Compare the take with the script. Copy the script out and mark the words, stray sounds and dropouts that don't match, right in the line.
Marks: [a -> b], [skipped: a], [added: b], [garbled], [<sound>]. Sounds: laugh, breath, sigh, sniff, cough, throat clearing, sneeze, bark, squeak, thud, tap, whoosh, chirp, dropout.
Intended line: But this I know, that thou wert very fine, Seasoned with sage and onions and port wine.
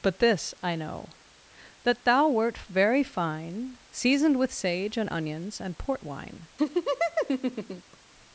But this I know, that thou wert very fine, Seasoned with sage and onions and port wine. [laugh]